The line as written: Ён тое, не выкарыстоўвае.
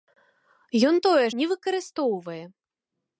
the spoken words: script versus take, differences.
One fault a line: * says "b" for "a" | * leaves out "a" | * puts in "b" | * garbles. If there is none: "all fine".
all fine